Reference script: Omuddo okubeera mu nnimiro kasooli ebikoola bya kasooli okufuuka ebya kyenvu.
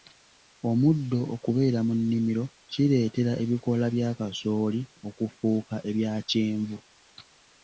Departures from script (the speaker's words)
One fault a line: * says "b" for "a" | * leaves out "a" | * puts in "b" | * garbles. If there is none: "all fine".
* says "kireetera" for "kasooli"